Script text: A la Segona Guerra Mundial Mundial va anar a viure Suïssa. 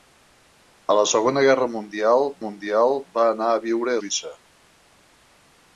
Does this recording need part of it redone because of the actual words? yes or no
no